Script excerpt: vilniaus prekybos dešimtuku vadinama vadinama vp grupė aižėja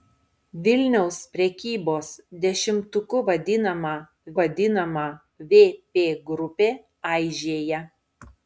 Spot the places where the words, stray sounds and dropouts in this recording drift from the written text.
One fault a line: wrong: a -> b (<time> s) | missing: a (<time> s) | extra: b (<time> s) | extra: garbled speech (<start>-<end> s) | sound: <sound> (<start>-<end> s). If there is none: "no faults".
no faults